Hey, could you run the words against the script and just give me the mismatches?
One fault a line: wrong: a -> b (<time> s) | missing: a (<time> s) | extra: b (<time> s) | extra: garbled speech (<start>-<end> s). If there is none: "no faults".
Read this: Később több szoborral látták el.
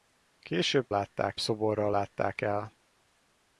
wrong: több -> látták (0.9 s)